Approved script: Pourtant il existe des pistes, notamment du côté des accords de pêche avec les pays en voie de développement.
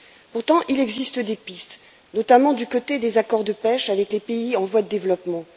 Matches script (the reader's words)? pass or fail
pass